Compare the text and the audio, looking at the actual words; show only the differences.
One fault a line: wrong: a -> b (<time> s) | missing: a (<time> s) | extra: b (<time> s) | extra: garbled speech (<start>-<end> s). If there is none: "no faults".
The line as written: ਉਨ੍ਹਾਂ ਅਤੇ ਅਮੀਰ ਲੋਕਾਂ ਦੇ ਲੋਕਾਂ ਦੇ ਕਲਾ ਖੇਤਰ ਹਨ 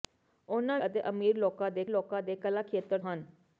no faults